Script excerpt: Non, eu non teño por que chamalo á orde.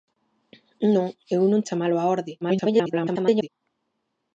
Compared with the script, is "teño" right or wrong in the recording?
wrong